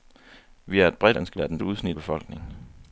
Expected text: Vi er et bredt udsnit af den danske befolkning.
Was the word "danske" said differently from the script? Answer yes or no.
yes